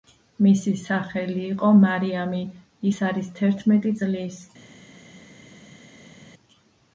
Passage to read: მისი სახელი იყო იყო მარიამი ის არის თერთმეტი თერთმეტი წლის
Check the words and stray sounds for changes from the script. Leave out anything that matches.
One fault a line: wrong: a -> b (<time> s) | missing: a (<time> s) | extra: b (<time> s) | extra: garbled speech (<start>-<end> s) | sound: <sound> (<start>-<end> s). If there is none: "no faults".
missing: იყო (1.7 s)
missing: თერთმეტი (4.0 s)